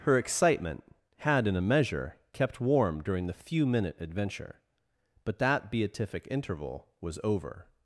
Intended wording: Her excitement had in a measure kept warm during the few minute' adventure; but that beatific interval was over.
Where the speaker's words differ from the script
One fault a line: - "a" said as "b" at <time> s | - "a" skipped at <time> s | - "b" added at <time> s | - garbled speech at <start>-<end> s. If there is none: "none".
none